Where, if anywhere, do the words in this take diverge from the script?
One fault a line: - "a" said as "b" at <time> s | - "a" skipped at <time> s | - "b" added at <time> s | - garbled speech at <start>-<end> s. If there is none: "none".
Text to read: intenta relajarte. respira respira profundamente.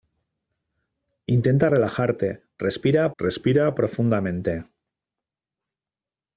none